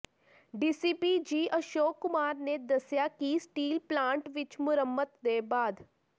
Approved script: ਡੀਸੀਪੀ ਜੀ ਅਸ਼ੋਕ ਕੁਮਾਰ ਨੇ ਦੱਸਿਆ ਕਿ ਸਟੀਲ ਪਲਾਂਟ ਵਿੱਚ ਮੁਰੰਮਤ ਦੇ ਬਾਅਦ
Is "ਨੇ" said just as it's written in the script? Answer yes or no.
yes